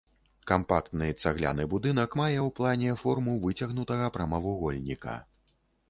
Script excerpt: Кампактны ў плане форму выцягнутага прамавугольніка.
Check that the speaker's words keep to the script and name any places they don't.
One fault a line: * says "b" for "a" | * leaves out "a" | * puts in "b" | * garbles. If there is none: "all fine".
* puts in "цагляны будынак мае"